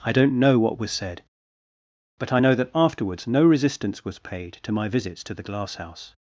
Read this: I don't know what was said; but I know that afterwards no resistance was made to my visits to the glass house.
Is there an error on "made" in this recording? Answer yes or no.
yes